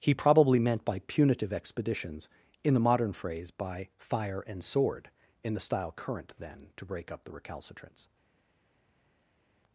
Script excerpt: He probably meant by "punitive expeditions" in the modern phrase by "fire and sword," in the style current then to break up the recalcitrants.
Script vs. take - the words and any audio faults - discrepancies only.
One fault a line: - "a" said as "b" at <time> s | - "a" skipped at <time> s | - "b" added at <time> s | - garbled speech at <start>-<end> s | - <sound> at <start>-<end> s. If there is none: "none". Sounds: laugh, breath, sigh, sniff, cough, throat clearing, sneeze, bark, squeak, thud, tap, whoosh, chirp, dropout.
none